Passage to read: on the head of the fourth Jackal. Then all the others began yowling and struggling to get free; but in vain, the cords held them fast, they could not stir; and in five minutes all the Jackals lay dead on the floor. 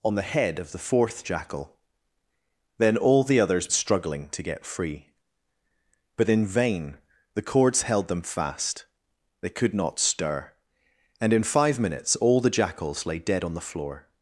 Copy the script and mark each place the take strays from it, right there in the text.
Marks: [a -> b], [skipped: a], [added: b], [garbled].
on the head of the fourth Jackal. Then all the others [skipped: began yowling and] struggling to get free; but in vain, the cords held them fast, they could not stir; and in five minutes all the Jackals lay dead on the floor.